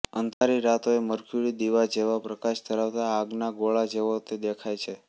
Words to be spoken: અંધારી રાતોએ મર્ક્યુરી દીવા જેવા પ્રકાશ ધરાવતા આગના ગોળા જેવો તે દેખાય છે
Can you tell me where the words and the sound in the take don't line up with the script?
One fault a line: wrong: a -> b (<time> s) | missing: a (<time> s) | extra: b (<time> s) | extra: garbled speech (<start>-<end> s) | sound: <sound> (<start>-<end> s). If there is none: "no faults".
sound: dropout (0.3-0.4 s)